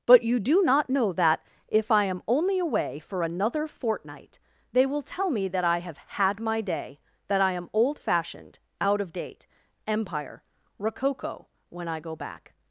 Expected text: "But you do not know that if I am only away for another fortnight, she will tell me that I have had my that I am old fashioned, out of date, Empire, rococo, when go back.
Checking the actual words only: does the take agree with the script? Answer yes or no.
no